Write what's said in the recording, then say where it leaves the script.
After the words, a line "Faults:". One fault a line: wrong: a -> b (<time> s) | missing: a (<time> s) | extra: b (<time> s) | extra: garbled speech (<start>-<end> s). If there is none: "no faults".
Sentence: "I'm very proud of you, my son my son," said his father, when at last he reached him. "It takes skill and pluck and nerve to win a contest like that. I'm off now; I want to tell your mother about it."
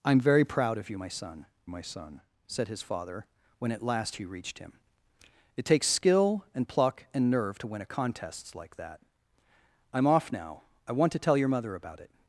"I'm very proud of you, my son my son," said his father, when at last he reached him. "It takes skill and pluck and nerve to win a contest like that. I'm off now; I want to tell your mother about it."
Faults:
no faults